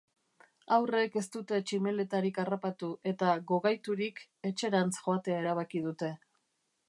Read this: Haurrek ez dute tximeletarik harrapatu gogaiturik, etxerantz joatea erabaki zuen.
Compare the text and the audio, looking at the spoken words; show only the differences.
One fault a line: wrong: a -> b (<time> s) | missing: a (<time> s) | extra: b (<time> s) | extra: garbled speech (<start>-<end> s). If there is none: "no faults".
extra: eta (3.1 s)
wrong: zuen -> dute (5.9 s)